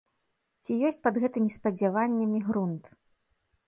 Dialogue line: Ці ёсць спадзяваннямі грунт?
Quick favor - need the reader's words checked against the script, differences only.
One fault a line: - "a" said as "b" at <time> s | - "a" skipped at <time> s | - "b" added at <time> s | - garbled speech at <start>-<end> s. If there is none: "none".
- "пад гэтымі" added at 1.1 s